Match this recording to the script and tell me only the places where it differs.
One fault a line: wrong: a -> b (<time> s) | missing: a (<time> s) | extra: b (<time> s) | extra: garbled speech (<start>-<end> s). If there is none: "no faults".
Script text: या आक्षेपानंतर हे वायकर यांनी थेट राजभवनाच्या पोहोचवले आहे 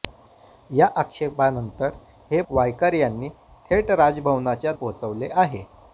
no faults